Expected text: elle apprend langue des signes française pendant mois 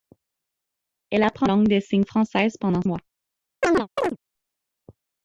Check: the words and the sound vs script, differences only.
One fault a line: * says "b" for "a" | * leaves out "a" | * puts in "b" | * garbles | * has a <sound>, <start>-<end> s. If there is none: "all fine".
* has a chirp, 3.6-4.2 s